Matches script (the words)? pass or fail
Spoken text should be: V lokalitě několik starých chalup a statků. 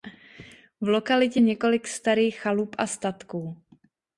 pass